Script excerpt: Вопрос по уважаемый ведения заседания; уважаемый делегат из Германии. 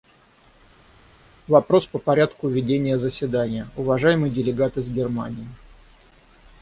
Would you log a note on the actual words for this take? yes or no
yes